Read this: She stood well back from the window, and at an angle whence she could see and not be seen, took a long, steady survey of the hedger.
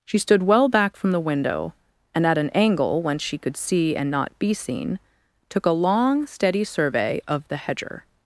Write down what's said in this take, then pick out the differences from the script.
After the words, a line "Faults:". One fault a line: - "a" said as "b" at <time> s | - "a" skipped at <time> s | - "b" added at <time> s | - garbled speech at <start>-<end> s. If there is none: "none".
She stood well back from the window, and at an angle whence she could see and not be seen, took a long, steady survey of the hedger.
Faults:
none